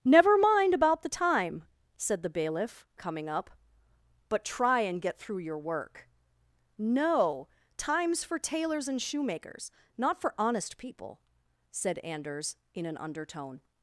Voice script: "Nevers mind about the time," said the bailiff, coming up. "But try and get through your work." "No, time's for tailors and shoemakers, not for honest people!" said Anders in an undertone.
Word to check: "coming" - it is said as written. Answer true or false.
true